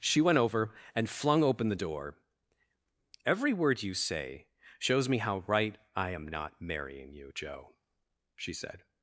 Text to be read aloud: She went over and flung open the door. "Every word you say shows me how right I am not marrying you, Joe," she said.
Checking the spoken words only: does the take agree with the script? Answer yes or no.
yes